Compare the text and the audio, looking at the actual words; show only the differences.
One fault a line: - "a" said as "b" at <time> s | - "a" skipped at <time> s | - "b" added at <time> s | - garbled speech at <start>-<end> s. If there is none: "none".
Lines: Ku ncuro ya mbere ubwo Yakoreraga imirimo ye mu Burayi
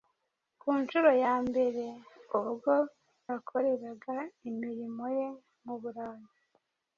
none